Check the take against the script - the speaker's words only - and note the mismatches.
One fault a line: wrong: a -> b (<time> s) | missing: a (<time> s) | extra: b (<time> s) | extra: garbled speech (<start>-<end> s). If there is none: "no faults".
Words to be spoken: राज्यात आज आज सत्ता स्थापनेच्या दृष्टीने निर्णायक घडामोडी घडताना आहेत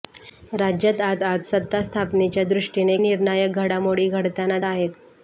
no faults